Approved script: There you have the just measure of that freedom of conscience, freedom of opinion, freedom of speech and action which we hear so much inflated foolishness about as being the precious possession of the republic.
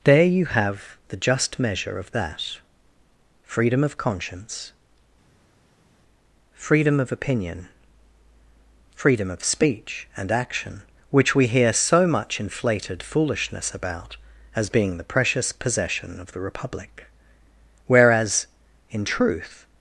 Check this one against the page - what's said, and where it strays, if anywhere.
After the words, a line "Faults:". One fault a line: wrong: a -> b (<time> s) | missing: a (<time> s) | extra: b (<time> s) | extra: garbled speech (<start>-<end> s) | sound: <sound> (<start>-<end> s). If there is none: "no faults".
There you have the just measure of that freedom of conscience, freedom of opinion, freedom of speech and action which we hear so much inflated foolishness about as being the precious possession of the republic. Whereas, in truth
Faults:
extra: Whereas in truth (17.9 s)